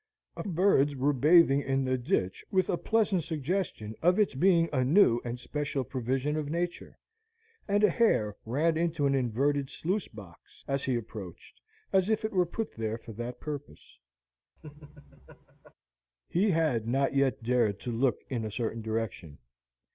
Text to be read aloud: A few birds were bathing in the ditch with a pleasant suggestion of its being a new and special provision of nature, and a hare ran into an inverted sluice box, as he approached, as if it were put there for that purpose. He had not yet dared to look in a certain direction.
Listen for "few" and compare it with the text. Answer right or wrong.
wrong